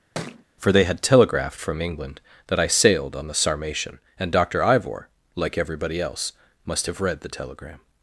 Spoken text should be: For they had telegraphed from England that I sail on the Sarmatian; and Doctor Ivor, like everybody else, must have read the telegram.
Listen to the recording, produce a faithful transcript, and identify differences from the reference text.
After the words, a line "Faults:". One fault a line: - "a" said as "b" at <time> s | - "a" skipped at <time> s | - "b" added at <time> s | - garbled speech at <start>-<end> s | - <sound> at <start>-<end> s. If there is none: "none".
For they had telegraphed from England that I sailed on the Sarmatian; and Doctor Ivor, like everybody else, must have read the telegram.
Faults:
- thud at 0.1-0.4 s
- "sail" said as "sailed" at 2.7 s